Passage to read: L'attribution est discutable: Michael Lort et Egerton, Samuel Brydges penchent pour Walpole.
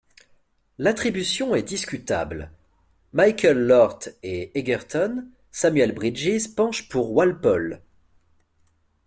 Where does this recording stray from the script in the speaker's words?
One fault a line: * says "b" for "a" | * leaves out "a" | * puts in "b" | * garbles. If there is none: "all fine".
all fine